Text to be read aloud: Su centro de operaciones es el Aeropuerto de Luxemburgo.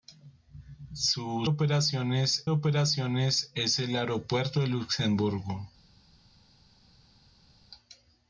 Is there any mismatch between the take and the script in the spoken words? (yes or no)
yes